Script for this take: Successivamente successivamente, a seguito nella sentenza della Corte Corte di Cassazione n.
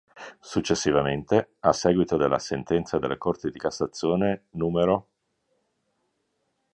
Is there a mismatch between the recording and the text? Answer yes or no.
yes